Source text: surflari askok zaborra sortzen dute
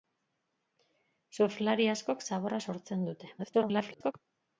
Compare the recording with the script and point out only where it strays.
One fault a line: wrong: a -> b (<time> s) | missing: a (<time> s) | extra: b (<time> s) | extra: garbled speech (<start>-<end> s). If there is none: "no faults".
extra: garbled speech (3.4-4.1 s)